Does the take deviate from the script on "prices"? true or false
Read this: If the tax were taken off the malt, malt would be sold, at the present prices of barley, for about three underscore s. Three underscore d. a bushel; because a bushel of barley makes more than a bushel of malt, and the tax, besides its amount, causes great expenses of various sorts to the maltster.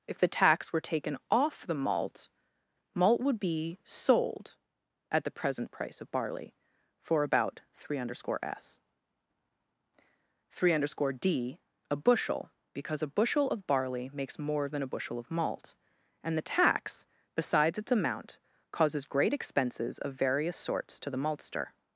true